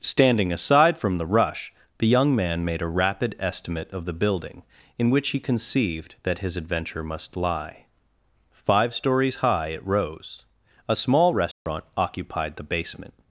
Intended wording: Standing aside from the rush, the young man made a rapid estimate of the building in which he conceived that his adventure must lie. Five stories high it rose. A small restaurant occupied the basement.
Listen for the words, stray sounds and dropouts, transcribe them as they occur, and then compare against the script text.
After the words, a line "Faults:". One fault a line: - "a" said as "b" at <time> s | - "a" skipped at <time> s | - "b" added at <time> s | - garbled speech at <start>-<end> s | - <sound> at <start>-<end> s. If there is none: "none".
Standing aside from the rush, the young man made a rapid estimate of the building in which he conceived that his adventure must lie. Five stories high it rose. A small restaurant occupied the basement.
Faults:
- dropout at 11.5-11.7 s